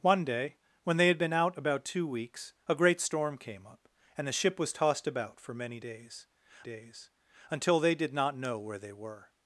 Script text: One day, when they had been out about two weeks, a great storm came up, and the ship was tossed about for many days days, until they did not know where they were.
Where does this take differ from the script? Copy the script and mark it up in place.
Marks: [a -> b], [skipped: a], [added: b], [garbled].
One day, when they had been out about two weeks, a great storm came up, and the ship was tossed about for many days days, until they did not know where they were.